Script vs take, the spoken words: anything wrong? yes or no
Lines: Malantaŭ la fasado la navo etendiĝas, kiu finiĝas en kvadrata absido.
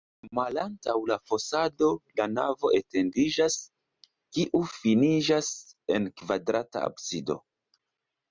no